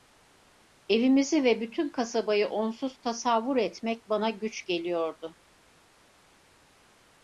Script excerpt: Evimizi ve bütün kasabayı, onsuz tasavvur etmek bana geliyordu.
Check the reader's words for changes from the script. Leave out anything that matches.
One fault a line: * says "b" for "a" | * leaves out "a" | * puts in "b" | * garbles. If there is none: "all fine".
* puts in "güç"